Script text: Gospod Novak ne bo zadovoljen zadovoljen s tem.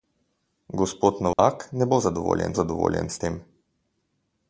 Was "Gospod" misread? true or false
false